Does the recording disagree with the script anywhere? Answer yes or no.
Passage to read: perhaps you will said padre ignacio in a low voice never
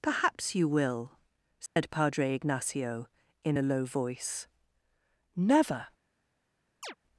no